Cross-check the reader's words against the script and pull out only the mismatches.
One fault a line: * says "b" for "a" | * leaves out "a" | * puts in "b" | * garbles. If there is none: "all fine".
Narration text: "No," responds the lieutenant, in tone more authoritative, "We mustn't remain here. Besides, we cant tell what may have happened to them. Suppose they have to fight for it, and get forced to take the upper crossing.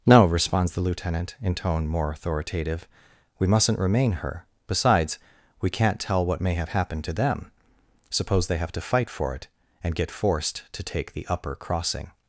* says "her" for "here"